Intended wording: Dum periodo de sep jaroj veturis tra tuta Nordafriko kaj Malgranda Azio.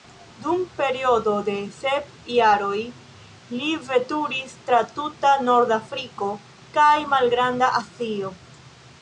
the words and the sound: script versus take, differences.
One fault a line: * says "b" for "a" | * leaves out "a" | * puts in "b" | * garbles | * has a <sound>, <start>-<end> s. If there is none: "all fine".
* puts in "li"